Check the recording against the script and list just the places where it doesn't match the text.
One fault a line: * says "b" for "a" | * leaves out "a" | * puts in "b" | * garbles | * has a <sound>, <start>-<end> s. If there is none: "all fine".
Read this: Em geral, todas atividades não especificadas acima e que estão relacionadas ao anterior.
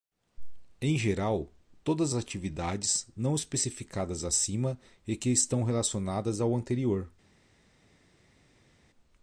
all fine